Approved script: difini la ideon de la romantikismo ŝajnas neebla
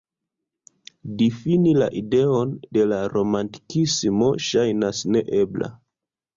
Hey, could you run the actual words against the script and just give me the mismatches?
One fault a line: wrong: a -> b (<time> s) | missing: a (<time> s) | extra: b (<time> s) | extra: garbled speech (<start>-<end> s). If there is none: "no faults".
no faults